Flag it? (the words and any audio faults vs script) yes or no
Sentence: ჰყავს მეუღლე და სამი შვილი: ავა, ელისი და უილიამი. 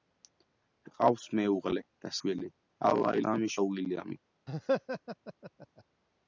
yes